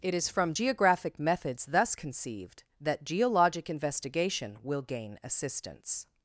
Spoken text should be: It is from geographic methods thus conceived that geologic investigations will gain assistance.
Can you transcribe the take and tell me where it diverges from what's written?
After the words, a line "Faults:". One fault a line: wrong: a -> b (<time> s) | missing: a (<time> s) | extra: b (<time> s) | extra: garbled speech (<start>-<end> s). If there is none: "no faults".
It is from geographic methods thus conceived that geologic investigation will gain assistance.
Faults:
wrong: investigations -> investigation (3.7 s)